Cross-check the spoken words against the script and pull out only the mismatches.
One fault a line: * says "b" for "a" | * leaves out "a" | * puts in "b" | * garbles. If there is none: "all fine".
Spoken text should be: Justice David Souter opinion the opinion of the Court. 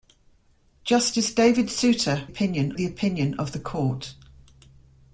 all fine